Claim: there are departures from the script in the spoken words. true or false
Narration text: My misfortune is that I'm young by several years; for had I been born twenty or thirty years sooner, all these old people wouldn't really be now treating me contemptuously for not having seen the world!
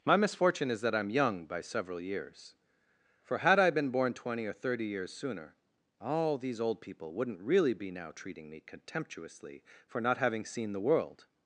false